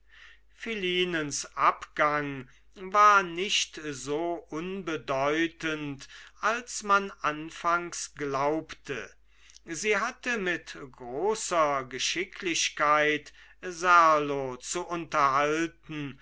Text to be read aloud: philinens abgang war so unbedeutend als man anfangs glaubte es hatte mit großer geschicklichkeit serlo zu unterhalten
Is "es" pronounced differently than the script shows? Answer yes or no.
yes